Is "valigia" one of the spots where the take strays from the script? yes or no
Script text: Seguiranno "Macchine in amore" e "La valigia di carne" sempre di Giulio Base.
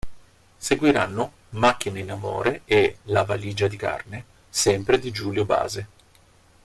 no